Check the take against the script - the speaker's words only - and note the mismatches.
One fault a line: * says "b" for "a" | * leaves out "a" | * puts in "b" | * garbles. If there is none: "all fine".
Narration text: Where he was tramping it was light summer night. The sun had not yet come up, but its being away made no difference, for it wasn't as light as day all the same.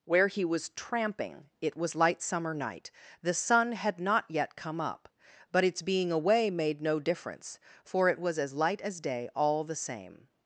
* says "was" for "wasn't"